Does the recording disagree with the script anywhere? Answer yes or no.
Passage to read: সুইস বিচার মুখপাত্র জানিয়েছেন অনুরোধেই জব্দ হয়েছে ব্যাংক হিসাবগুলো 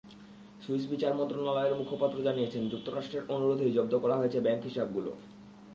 yes